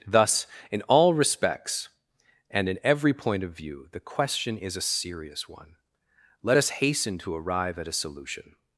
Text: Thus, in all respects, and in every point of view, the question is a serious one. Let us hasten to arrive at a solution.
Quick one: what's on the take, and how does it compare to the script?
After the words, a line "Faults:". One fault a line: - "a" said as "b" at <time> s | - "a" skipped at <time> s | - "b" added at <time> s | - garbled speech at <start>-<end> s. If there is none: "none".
Thus, in all respects, and in every point of view, the question is a serious one. Let us hasten to arrive at a solution.
Faults:
none